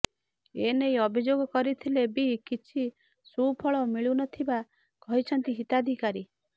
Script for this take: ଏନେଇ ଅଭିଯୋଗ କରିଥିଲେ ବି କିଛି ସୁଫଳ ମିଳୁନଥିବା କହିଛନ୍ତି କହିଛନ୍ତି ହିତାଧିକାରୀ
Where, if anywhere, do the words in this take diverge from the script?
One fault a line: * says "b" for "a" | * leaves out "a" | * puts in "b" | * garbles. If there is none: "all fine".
* leaves out "କହିଛନ୍ତି"